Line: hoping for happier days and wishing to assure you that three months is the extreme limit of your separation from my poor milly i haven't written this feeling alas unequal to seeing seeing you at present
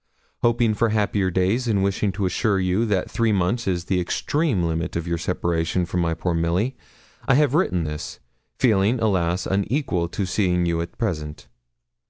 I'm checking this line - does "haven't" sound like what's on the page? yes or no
no